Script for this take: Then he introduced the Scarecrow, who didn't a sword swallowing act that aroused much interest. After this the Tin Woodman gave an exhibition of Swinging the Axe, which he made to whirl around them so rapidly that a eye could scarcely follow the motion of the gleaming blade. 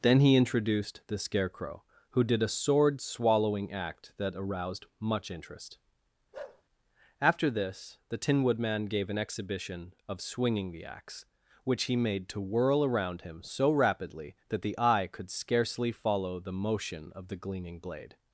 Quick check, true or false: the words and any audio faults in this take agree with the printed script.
false